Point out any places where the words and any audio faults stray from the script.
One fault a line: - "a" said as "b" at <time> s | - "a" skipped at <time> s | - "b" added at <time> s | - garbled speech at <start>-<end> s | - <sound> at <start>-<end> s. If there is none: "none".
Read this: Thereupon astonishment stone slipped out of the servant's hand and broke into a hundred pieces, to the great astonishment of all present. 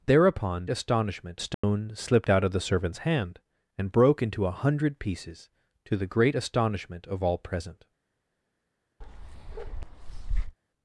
- dropout at 1.5-1.6 s
- bark at 9.0-10.6 s